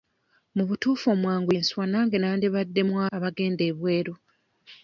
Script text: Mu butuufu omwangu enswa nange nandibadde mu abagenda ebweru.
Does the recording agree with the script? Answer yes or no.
yes